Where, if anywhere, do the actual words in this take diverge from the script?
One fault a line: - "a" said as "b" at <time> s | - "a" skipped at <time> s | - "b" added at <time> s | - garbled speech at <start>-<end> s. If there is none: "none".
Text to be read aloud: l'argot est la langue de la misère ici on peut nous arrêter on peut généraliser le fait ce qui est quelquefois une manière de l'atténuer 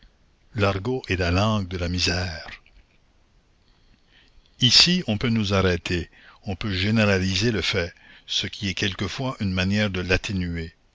none